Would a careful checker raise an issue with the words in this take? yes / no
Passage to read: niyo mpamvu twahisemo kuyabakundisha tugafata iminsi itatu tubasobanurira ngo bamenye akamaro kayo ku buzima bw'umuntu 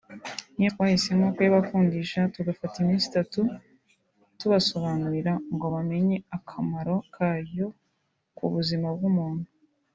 yes